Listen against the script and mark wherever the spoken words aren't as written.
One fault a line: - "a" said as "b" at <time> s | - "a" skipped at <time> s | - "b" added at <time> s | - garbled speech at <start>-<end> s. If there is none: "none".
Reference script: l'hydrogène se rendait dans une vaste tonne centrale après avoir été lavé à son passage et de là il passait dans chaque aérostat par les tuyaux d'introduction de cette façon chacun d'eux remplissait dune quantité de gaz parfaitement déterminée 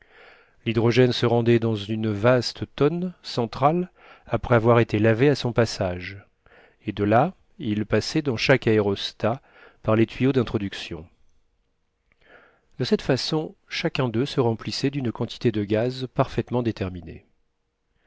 - "se" added at 14.3 s